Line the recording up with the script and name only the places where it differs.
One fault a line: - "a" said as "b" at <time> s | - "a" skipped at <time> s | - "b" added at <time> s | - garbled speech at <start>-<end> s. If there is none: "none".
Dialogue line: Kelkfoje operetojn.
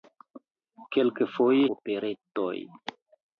none